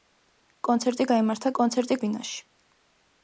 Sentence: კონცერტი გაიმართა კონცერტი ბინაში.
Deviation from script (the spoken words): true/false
false